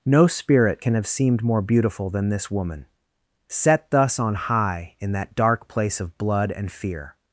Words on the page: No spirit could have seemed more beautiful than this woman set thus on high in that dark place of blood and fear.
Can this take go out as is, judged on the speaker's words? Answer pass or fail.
fail